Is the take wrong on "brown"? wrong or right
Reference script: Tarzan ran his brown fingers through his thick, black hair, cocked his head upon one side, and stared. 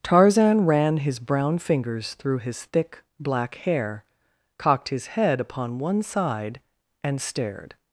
right